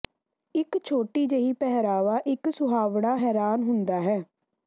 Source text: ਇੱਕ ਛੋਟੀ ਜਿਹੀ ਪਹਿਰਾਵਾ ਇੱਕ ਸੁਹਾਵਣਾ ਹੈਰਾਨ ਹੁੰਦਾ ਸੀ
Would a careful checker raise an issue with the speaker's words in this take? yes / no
yes